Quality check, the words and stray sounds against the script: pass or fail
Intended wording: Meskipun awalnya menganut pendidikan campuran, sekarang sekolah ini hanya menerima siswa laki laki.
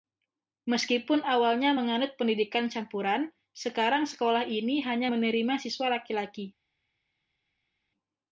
pass